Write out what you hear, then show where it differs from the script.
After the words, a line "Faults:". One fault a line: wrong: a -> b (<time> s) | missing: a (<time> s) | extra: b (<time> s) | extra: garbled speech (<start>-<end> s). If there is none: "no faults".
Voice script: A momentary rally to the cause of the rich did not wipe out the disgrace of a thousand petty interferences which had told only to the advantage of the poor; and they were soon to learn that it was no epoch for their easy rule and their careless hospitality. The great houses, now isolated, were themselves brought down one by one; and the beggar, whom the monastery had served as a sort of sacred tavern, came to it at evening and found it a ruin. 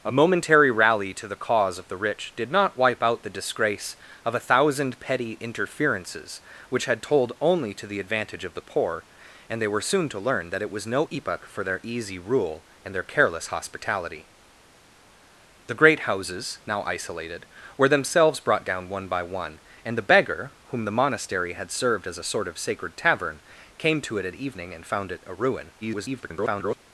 A momentary rally to the cause of the rich did not wipe out the disgrace of a thousand petty interferences which had told only to the advantage of the poor; and they were soon to learn that it was no epoch for their easy rule and their careless hospitality. The great houses, now isolated, were themselves brought down one by one; and the beggar, whom the monastery had served as a sort of sacred tavern, came to it at evening and found it a ruin. [garbled]
Faults:
extra: garbled speech (25.8-26.8 s)